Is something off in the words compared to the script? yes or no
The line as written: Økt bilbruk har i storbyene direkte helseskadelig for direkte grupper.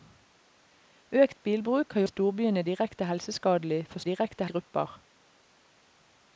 no